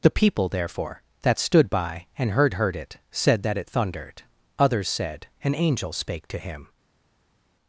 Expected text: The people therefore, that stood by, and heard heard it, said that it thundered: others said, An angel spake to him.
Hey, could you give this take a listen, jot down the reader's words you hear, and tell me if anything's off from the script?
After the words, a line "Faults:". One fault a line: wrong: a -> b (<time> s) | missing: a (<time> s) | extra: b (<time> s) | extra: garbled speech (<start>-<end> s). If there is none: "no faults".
The people therefore, that stood by, and heard heard it, said that it thundered: others said, An angel spake to him.
Faults:
no faults